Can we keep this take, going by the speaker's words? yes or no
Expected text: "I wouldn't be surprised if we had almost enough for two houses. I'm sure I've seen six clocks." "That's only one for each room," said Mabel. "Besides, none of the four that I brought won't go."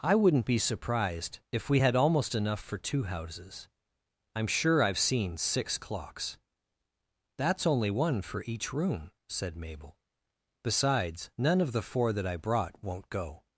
yes